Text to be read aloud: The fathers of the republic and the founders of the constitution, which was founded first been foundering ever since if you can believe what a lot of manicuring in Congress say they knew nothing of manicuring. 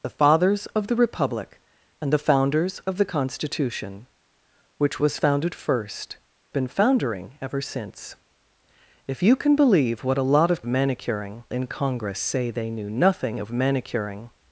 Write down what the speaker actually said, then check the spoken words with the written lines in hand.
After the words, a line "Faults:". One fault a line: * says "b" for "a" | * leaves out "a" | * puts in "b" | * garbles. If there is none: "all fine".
The fathers of the republic and the founders of the constitution, which was founded first been foundering ever since if you can believe what a lot of manicuring in Congress say they knew nothing of manicuring.
Faults:
all fine